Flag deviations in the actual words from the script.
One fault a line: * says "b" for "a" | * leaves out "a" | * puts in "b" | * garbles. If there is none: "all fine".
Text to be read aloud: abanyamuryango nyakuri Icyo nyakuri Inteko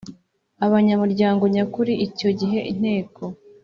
* says "gihe" for "nyakuri"